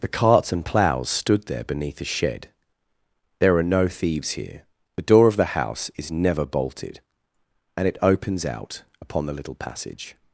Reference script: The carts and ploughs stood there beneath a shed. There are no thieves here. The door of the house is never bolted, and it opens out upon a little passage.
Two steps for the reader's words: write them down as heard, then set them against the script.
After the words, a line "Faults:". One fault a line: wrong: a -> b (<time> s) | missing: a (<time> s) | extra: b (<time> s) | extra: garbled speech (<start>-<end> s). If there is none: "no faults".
The carts and ploughs stood there beneath a shed. There are no thieves here. The door of the house is never bolted, and it opens out upon the little passage.
Faults:
wrong: a -> the (9.3 s)